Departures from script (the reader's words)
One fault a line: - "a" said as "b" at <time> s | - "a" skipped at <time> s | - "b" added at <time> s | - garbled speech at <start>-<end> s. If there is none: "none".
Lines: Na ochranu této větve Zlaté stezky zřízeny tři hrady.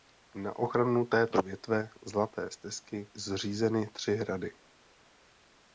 none